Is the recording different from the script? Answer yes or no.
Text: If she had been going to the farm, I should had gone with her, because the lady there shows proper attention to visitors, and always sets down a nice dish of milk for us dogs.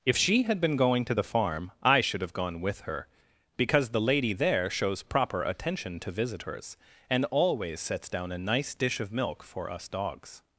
yes